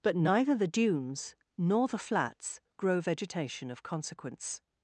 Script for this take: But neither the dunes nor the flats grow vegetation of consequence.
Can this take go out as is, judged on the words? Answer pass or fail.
pass